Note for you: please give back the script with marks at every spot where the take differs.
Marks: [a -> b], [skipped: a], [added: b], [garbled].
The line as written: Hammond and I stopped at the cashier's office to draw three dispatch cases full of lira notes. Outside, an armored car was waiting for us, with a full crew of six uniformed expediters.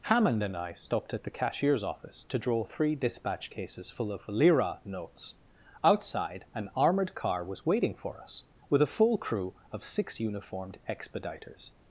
Hammond and I stopped at the cashier's office to draw three dispatch cases full of lira notes. Outside, an armored car was waiting for us, with a full crew of six uniformed expediters.